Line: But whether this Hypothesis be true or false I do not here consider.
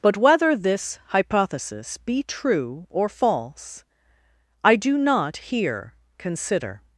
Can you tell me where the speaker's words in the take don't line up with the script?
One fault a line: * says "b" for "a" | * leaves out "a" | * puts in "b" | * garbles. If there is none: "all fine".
all fine